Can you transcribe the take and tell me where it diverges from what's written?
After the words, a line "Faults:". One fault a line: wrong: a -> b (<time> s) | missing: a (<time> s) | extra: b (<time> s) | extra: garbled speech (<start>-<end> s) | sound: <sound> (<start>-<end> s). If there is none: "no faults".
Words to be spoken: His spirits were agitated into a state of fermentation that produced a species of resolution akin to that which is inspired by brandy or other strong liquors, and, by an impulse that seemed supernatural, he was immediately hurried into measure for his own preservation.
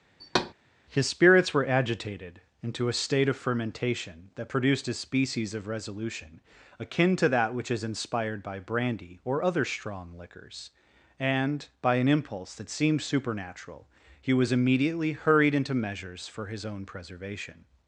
His spirits were agitated into a state of fermentation that produced a species of resolution akin to that which is inspired by brandy or other strong liquors, and, by an impulse that seemed supernatural, he was immediately hurried into measures for his own preservation.
Faults:
sound: thud (0.2-0.5 s)
wrong: measure -> measures (15.7 s)